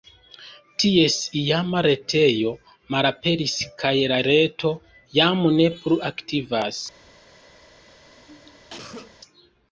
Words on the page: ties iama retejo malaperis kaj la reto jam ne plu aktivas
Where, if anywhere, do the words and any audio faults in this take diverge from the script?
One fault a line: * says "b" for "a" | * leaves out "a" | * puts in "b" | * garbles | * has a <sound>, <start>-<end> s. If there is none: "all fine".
* has a cough, 7.9-9.2 s